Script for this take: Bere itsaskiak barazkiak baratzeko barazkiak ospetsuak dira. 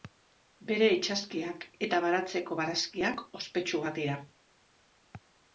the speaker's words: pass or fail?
fail